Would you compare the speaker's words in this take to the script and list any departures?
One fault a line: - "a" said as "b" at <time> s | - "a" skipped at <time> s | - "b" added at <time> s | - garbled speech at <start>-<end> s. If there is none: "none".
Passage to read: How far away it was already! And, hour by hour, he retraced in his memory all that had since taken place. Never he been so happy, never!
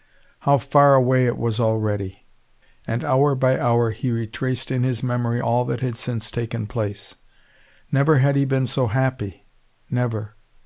- "had" added at 8.2 s